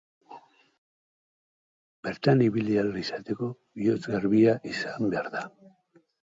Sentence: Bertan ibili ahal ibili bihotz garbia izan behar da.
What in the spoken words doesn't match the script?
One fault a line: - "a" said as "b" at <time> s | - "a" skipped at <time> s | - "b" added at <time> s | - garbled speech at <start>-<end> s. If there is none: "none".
- "ibili" said as "izateko" at 3.0 s